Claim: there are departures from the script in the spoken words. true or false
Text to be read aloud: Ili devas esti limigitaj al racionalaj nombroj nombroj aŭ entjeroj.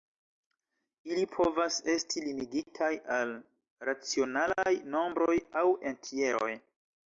true